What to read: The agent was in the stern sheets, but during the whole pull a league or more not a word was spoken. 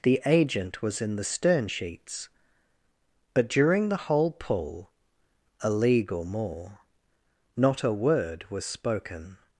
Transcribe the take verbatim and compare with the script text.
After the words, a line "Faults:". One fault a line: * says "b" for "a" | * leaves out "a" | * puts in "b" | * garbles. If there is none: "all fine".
The agent was in the stern sheets, but during the whole pull a league or more not a word was spoken.
Faults:
all fine